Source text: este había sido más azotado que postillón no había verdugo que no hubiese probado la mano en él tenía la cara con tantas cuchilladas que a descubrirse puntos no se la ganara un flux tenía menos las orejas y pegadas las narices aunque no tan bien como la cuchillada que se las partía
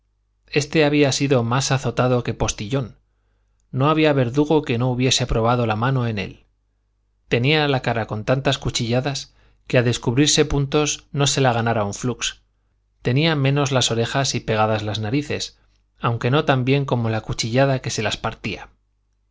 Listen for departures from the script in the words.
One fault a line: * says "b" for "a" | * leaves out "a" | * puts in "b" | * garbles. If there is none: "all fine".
all fine